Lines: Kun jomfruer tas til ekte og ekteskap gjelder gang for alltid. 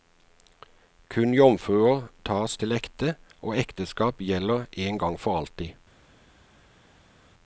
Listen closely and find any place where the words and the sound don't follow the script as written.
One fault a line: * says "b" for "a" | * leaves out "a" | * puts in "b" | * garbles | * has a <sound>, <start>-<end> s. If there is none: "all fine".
* puts in "en"